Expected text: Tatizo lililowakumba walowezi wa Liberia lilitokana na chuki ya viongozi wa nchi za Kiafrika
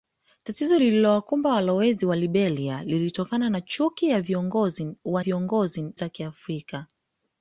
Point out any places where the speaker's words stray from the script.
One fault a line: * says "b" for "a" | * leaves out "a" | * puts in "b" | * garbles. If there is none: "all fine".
* says "viongozi" for "nchi"